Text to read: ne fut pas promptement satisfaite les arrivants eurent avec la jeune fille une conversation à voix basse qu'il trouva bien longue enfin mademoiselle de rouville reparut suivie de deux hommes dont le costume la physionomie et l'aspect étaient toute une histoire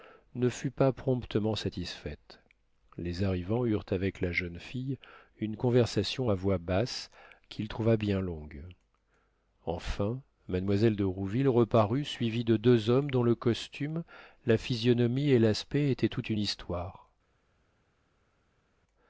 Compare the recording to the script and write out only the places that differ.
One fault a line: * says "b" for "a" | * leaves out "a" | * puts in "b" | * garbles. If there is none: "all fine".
all fine